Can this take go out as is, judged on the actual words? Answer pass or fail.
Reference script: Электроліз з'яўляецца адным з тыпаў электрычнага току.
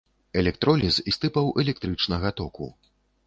fail